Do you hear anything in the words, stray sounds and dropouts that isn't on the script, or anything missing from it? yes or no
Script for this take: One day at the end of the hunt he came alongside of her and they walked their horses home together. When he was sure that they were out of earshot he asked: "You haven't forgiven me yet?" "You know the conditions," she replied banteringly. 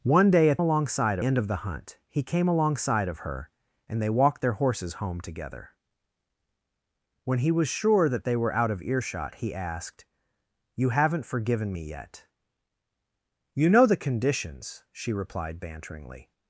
yes